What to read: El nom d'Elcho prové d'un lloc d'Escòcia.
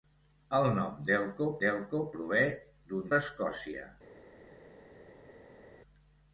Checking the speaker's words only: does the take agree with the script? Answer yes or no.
no